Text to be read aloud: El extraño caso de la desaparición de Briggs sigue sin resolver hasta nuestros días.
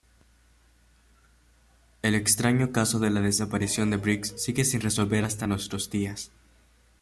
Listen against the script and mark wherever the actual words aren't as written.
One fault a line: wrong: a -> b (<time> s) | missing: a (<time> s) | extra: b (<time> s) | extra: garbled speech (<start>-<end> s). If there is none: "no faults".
no faults